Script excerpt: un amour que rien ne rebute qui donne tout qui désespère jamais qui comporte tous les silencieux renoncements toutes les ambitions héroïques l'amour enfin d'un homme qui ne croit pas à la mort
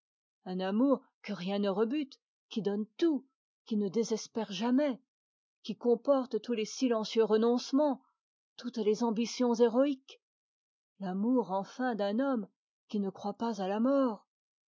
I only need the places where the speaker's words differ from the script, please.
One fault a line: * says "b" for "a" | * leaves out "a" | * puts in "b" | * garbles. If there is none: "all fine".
* puts in "ne"